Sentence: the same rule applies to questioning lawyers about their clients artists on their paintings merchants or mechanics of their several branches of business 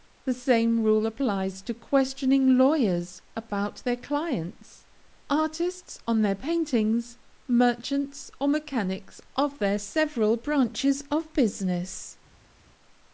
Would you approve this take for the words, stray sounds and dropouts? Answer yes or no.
yes